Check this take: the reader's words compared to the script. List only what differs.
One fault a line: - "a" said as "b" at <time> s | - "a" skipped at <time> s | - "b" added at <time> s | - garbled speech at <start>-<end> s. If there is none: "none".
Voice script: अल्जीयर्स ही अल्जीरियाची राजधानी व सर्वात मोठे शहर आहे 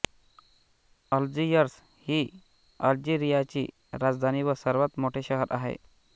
none